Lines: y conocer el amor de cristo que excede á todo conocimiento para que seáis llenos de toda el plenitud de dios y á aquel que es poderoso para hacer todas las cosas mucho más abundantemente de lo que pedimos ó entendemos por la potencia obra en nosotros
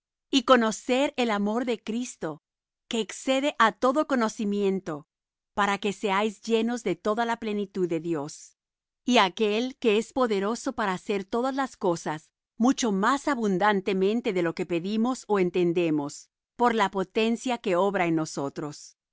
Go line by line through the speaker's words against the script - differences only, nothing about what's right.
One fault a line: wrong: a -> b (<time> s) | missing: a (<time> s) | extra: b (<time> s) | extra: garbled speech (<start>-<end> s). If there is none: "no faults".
wrong: el -> la (7.2 s)
extra: que (17.6 s)